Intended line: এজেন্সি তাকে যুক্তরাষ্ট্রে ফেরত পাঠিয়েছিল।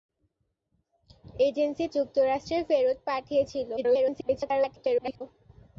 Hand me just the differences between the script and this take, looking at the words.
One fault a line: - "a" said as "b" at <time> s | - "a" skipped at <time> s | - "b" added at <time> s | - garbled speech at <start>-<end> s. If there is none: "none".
- "তাকে" skipped at 1.9 s
- garbled speech at 3.8-5.2 s